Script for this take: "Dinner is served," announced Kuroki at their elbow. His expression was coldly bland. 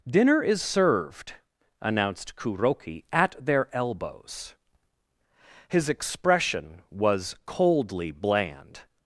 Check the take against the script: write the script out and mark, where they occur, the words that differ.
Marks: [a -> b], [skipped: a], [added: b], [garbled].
"Dinner is served," announced Kuroki at their [elbow. -> elbows] His expression was coldly bland.